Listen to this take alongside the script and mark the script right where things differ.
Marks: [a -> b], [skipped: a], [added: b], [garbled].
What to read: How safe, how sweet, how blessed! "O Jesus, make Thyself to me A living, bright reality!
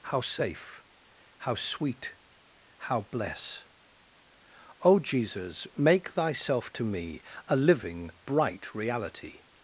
How safe, how sweet, how [blessed! -> bless] "O Jesus, make Thyself to me A living, bright reality!